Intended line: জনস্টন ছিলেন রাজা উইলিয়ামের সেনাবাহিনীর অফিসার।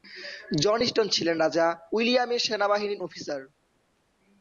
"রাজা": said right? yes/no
yes